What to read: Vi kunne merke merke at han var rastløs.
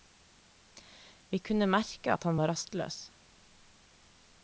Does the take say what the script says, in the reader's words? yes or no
no